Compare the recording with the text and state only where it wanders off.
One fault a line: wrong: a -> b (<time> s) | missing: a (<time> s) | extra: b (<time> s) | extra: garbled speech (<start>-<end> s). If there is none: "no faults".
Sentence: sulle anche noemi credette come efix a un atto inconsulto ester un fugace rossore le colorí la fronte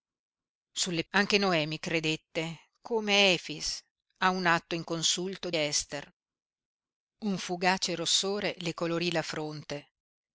no faults